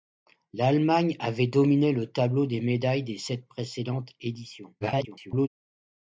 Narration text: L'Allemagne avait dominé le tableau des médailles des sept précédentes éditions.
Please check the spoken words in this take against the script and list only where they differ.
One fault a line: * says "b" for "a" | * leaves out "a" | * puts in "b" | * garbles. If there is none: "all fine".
* garbles